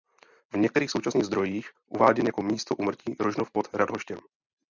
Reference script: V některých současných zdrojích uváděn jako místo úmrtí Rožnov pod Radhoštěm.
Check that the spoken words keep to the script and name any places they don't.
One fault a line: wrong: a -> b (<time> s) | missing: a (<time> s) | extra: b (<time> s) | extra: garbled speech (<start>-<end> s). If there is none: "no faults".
no faults